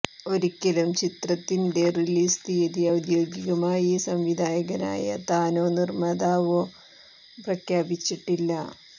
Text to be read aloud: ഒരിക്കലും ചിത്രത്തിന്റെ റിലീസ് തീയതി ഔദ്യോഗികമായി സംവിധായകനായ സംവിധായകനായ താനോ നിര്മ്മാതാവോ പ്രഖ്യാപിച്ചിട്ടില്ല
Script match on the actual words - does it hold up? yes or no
no